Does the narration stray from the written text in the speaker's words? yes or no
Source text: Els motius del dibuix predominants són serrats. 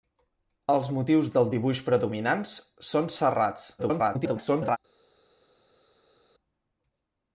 yes